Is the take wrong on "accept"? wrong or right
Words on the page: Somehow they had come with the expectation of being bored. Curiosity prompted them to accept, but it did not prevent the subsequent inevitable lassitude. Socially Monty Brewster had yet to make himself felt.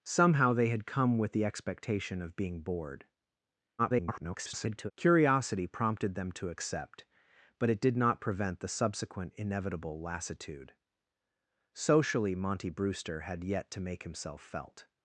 right